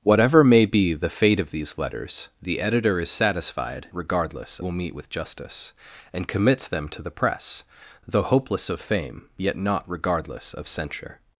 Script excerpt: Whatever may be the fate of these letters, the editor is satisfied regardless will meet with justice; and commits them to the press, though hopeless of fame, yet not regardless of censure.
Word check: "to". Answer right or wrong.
right